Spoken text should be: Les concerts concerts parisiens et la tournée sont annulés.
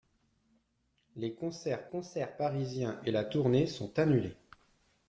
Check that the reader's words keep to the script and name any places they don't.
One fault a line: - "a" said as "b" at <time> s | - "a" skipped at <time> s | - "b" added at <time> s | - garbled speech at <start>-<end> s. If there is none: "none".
none